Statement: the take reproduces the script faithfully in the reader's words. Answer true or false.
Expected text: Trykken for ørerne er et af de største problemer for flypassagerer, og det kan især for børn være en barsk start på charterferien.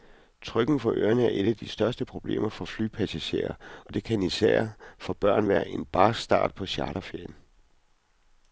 true